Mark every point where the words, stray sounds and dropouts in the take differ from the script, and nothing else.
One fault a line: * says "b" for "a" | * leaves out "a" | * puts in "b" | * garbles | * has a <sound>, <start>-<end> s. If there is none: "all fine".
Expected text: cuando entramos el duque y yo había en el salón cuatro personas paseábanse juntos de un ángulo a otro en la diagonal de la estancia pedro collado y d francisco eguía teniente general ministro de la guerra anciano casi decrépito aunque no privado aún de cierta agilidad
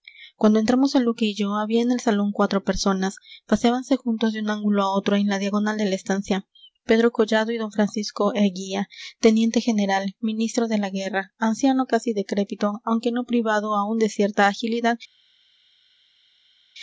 all fine